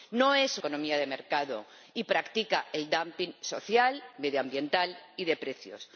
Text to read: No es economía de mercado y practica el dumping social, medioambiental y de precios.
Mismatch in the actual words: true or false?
false